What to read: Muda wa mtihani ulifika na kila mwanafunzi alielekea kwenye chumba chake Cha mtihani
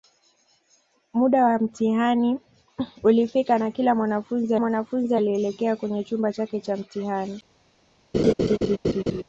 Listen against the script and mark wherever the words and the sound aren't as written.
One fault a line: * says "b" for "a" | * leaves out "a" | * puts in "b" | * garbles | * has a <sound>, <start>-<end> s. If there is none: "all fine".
* puts in "mwanafunzi"
* has a laugh, 8.1-9.2 s